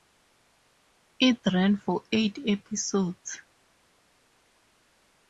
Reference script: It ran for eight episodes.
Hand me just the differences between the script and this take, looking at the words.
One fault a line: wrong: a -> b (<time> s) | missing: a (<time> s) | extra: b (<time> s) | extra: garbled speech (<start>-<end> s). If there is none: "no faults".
no faults